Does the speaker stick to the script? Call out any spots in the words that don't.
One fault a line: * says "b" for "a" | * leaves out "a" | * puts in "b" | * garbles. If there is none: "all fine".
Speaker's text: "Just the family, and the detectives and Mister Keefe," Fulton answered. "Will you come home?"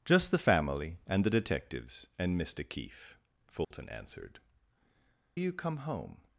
* leaves out "Will"